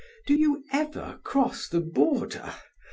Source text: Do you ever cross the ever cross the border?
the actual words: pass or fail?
fail